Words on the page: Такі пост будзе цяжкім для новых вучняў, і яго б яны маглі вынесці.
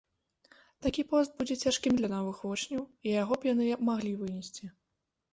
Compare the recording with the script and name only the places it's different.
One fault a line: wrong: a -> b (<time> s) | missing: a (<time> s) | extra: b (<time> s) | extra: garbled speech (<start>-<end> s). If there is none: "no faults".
no faults